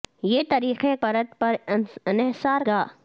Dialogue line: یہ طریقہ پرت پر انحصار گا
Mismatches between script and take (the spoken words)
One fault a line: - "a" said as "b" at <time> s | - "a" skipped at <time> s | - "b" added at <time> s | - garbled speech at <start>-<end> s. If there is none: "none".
none